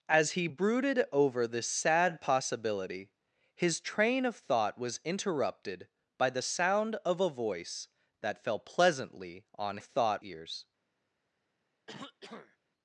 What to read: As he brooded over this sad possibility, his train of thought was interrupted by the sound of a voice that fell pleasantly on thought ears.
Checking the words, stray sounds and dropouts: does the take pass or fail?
fail